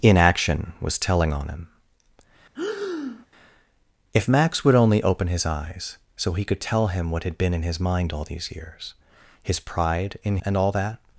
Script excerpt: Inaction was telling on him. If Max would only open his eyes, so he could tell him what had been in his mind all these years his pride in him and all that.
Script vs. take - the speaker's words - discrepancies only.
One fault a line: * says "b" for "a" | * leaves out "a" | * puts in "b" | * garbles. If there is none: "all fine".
* leaves out "him"